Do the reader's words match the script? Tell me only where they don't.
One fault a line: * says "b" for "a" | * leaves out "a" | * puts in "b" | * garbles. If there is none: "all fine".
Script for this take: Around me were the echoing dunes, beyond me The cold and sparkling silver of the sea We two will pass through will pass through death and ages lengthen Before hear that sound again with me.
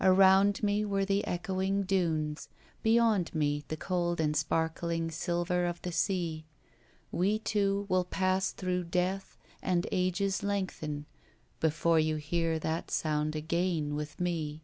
* leaves out "will pass through"
* puts in "you"